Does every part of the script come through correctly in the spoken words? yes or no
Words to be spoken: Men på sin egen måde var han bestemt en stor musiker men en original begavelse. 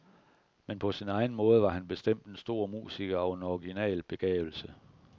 no